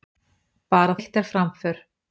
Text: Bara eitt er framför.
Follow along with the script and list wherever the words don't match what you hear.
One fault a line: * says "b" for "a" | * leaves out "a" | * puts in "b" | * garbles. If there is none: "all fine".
all fine